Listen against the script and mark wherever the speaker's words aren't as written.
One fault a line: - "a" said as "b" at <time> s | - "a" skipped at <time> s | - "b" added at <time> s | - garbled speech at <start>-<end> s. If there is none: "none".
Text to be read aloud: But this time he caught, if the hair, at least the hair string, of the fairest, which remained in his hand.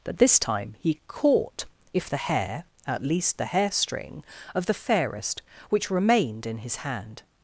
none